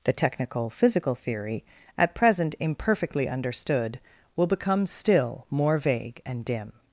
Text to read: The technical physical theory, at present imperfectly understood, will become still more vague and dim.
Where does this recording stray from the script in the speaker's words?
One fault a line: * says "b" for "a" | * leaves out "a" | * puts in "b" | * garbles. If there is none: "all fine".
all fine